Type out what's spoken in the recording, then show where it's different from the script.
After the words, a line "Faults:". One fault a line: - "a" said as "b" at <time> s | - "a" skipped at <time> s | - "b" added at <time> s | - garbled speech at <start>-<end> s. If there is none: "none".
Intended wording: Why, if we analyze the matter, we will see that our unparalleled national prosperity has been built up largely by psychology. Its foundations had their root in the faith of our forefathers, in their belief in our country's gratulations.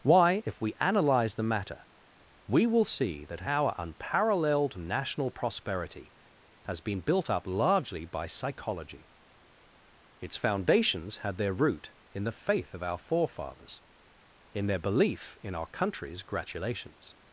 Why, if we analyze the matter, we will see that our unparalleled national prosperity has been built up largely by psychology. Its foundations had their root in the faith of our forefathers, in their belief in our country's gratulations.
Faults:
none